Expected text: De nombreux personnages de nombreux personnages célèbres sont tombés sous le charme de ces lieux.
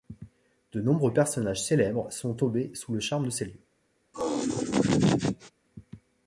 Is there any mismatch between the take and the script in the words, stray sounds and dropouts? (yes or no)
yes